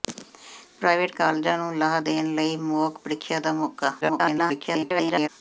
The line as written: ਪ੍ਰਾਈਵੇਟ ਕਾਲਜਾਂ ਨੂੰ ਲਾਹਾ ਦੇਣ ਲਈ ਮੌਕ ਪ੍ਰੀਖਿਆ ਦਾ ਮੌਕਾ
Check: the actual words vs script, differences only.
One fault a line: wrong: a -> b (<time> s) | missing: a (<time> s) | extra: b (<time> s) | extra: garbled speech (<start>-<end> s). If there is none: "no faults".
extra: garbled speech (4.0-5.3 s)